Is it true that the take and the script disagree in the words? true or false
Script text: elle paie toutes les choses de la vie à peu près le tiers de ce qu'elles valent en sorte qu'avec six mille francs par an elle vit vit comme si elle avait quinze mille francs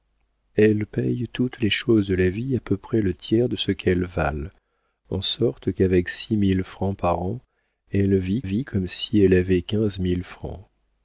false